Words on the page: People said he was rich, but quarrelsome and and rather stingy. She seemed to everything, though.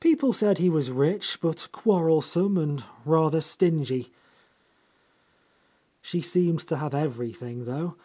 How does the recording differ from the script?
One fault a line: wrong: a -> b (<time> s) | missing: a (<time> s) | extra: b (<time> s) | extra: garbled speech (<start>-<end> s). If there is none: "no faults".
missing: and (2.8 s)
extra: have (6.8 s)